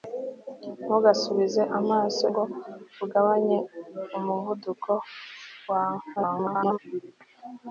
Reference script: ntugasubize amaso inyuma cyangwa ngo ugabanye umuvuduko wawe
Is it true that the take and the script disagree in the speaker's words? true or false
true